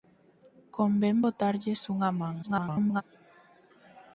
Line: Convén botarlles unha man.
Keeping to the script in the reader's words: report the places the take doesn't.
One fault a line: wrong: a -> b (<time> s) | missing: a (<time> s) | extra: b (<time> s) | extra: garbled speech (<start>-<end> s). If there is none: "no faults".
extra: garbled speech (2.4-3.0 s)